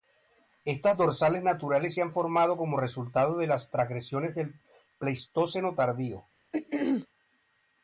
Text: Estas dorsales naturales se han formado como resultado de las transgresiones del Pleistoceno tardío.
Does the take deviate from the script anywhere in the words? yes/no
no